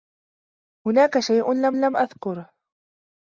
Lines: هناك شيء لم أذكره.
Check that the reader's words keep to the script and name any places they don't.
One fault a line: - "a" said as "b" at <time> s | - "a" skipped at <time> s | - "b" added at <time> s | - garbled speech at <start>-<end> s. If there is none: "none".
- "لم" added at 1.7 s